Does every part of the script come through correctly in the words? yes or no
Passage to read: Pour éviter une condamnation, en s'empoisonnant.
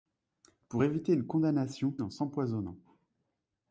yes